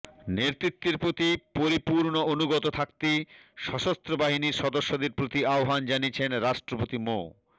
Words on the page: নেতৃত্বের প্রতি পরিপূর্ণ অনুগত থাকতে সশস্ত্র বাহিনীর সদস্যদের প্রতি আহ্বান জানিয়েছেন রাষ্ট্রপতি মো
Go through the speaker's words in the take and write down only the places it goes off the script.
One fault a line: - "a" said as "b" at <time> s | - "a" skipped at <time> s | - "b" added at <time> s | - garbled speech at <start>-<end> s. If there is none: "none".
none